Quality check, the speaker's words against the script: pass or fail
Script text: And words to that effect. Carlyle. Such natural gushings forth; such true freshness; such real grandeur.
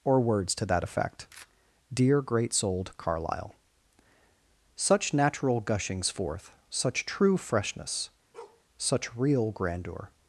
fail